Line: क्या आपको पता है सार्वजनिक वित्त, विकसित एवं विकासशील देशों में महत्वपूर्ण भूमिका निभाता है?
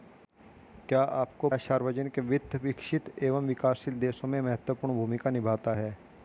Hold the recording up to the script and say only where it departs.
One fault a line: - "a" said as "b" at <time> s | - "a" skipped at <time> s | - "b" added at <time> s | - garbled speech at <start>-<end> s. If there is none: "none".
- "पता" skipped at 1.5 s